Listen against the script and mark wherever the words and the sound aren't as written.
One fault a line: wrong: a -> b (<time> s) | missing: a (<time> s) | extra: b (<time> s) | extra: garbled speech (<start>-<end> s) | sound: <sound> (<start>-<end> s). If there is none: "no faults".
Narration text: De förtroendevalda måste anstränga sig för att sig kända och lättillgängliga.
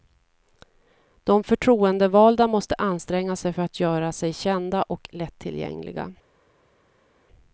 extra: göra (3.8 s)